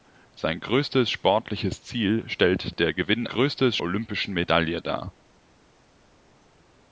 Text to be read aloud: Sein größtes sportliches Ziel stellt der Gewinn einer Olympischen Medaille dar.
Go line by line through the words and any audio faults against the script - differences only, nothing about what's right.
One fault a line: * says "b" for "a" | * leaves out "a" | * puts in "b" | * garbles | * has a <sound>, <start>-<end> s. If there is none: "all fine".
* says "größtes" for "einer"